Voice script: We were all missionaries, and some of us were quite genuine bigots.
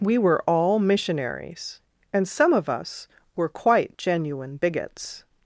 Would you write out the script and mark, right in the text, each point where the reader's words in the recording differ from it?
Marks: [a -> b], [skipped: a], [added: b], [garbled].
We were all missionaries, and some of us were quite genuine bigots.